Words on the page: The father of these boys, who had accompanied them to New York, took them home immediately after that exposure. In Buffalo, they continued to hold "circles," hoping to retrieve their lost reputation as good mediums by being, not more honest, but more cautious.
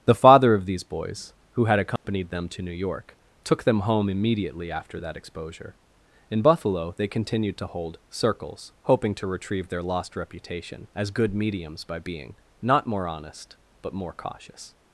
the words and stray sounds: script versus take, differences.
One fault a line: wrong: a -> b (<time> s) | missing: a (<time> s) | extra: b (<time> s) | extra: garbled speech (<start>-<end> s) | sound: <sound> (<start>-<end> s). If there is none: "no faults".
sound: dropout (2.0-2.0 s)